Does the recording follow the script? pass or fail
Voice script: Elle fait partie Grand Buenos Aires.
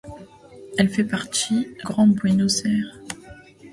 pass